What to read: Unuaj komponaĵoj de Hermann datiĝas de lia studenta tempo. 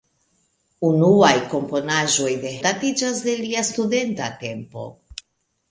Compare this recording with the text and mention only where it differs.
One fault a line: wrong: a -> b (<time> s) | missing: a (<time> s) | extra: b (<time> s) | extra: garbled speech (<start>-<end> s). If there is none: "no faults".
missing: Hermann (2.5 s)